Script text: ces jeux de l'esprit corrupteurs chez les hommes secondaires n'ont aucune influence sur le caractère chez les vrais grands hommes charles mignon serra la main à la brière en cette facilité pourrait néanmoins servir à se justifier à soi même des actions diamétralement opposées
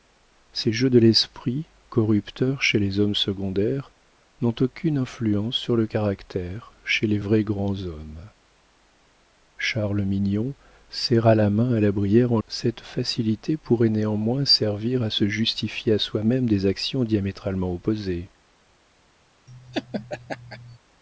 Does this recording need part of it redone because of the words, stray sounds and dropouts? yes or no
yes